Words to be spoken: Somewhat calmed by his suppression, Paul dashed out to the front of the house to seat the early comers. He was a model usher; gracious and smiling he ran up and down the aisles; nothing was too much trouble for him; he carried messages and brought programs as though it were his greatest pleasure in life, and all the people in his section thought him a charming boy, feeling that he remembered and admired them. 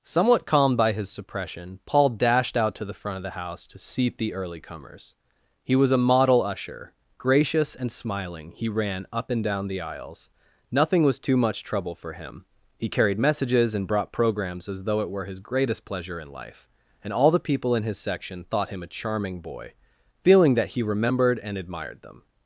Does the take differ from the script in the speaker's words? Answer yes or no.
no